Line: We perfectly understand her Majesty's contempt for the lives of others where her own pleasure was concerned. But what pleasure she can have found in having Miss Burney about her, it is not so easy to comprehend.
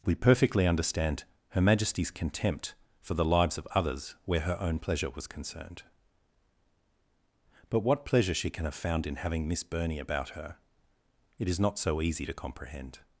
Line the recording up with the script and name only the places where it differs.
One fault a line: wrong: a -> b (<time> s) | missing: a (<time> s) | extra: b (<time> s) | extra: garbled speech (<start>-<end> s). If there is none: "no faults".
no faults